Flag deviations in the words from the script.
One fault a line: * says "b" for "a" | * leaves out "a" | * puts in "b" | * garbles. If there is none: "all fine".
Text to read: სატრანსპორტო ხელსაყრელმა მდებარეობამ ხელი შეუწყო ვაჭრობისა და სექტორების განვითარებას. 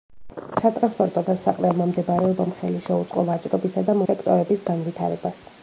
all fine